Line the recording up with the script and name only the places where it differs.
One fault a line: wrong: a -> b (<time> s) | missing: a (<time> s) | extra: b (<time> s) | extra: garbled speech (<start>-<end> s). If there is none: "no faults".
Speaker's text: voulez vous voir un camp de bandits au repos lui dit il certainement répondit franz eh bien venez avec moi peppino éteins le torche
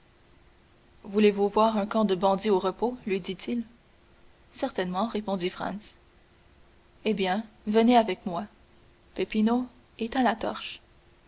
wrong: le -> la (10.2 s)